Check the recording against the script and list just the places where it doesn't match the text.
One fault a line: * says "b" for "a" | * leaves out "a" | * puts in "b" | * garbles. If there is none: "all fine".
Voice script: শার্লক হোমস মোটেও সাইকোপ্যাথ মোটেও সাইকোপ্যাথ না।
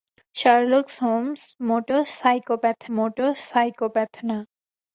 all fine